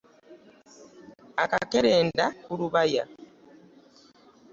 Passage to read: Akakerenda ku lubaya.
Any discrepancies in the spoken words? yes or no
no